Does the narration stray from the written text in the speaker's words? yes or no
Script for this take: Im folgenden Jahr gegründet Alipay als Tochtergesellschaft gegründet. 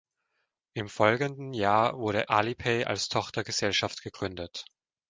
yes